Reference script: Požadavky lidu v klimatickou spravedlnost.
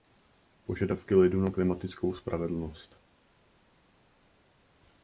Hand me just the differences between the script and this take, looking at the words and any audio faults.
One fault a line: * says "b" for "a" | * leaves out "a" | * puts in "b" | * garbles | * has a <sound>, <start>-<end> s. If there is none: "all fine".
* says "na" for "v"